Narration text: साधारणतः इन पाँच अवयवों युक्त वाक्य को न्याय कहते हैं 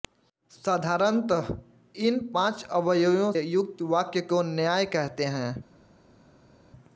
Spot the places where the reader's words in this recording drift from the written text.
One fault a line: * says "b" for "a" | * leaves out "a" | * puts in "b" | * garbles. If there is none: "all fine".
all fine